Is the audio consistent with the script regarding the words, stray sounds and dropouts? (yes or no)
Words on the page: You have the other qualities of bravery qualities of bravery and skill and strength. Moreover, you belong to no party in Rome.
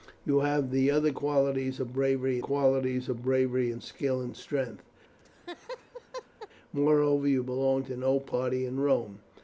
no